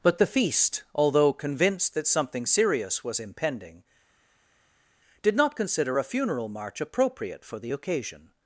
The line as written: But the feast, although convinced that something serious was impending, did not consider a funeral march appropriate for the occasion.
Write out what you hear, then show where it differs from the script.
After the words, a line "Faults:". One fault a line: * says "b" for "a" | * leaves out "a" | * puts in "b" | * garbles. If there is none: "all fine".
But the feast, although convinced that something serious was impending, did not consider a funeral march appropriate for the occasion.
Faults:
all fine